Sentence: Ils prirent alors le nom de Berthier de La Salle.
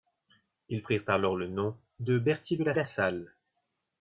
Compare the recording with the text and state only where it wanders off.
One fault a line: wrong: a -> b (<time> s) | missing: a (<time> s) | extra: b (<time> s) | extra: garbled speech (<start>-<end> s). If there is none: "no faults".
extra: La (2.7 s)